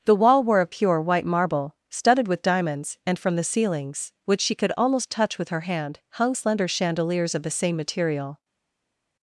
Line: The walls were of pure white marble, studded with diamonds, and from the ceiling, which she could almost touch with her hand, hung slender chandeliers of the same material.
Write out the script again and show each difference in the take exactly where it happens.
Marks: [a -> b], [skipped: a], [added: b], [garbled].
The [walls -> wall] were of pure white marble, studded with diamonds, and from the [ceiling, -> ceilings] which she could almost touch with her hand, hung slender chandeliers of the same material.